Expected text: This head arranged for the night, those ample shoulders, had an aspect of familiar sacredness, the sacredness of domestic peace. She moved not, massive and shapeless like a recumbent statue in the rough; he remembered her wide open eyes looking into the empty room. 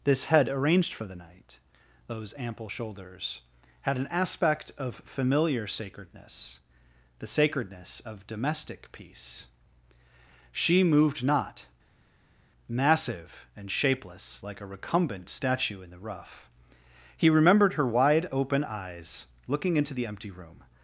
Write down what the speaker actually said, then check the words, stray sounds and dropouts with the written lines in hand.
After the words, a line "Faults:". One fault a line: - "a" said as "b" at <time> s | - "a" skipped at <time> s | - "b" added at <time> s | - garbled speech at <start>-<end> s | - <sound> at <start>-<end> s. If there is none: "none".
This head arranged for the night, those ample shoulders, had an aspect of familiar sacredness, the sacredness of domestic peace. She moved not, massive and shapeless like a recumbent statue in the rough; he remembered her wide open eyes looking into the empty room.
Faults:
none